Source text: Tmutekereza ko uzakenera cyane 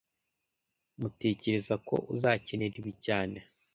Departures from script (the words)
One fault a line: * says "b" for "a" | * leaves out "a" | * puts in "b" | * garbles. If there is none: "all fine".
* puts in "ibi"